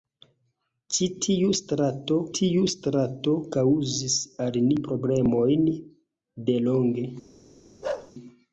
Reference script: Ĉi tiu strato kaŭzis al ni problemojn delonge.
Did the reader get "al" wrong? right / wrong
right